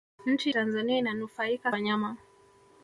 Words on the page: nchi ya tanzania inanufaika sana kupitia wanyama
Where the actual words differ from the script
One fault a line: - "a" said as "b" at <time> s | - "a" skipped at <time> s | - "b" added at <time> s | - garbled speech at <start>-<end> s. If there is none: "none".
- "ya" skipped at 0.5 s
- "sana kupitia" skipped at 1.7 s